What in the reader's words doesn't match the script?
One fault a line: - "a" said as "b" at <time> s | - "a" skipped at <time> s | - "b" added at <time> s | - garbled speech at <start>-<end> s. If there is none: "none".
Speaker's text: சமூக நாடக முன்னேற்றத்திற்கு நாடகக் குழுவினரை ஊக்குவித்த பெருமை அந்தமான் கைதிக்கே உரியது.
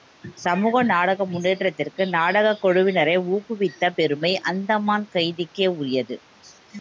none